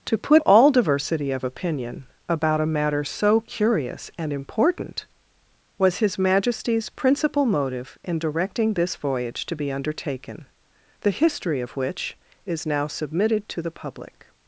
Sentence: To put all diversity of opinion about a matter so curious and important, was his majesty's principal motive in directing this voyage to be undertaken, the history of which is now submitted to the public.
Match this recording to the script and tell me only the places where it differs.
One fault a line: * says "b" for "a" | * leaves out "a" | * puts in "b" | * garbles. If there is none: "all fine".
all fine